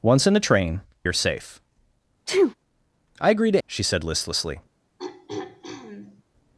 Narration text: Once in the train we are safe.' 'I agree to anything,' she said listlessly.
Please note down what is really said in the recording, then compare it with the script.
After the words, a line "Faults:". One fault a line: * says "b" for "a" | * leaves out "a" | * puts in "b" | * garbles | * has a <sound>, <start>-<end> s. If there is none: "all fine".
Once in the train are safe.' 'I agree to,' she said listlessly.
Faults:
* leaves out "we"
* has a sneeze, 2.3-2.5 s
* leaves out "anything"
* has a throat clearing, 5.0-6.2 s